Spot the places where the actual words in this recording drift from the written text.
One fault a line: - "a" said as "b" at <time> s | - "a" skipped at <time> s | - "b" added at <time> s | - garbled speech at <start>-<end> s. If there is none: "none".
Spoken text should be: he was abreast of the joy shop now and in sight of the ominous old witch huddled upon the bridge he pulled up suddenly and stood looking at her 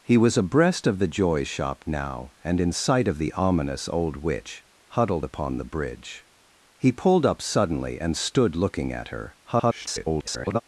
- garbled speech at 9.4-10.6 s